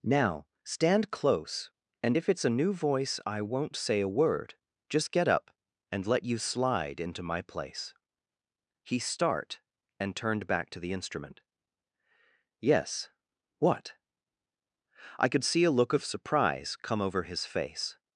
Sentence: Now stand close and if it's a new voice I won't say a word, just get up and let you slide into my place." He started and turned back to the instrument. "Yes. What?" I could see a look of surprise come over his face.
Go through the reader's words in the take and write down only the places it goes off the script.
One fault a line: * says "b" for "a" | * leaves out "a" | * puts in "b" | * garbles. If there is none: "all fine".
* says "start" for "started"